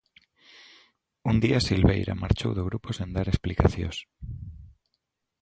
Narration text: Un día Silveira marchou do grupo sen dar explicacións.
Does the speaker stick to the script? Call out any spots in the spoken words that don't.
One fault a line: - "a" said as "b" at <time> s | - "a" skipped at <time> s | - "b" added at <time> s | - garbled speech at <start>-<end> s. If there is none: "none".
none